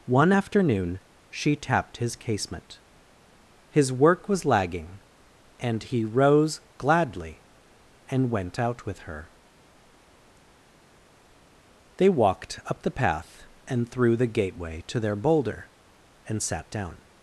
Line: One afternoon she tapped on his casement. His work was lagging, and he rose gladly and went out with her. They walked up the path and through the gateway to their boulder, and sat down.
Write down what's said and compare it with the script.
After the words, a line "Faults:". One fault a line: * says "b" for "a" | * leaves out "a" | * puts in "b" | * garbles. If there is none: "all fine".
One afternoon she tapped his casement. His work was lagging, and he rose gladly and went out with her. They walked up the path and through the gateway to their boulder, and sat down.
Faults:
* leaves out "on"